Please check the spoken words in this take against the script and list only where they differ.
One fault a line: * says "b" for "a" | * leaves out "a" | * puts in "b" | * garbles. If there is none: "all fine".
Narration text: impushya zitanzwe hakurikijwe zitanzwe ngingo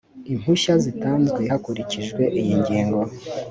* says "iyi" for "zitanzwe"